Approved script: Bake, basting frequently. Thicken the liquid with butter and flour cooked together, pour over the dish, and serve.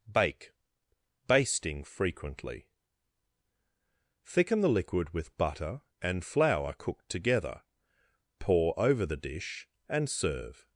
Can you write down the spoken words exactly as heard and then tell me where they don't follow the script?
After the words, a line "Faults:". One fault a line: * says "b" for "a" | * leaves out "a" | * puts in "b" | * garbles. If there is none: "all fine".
Bake, basting frequently. Thicken the liquid with butter and flour cooked together, pour over the dish, and serve.
Faults:
all fine